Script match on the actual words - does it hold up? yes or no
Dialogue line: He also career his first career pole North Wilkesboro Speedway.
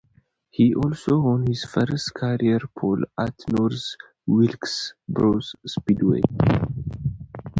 no